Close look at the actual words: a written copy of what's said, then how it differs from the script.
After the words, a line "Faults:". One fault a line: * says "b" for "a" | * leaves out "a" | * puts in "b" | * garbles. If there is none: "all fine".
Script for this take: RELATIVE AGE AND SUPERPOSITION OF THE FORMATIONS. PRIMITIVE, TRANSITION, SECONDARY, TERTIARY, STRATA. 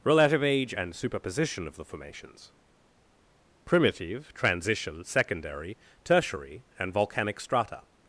RELATIVE AGE AND SUPERPOSITION OF THE FORMATIONS. PRIMITIVE, TRANSITION, SECONDARY, TERTIARY, AND VOLCANIC STRATA.
Faults:
* puts in "AND VOLCANIC"